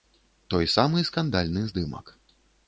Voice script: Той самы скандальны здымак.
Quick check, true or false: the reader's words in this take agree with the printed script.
true